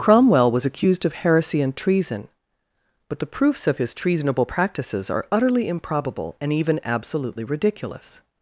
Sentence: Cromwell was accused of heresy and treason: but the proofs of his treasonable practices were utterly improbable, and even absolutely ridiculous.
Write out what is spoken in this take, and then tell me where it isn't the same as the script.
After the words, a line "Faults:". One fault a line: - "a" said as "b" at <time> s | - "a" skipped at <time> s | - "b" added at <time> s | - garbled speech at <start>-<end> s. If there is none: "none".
Cromwell was accused of heresy and treason: but the proofs of his treasonable practices are utterly improbable, and even absolutely ridiculous.
Faults:
- "were" said as "are" at 5.1 s